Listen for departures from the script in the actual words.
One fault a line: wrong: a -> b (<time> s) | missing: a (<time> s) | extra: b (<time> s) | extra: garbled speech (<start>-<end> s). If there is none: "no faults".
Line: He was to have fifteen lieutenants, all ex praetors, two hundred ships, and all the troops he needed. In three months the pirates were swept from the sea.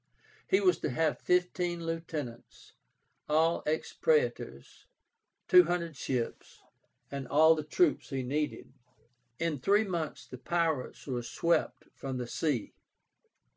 no faults